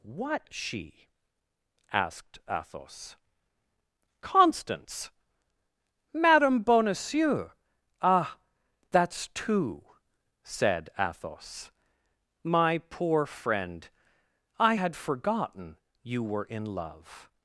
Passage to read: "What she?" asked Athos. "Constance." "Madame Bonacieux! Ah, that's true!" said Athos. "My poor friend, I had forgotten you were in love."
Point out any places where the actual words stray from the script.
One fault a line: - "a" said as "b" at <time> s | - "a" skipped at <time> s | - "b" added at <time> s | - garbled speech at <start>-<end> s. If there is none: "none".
- "true" said as "two" at 9.3 s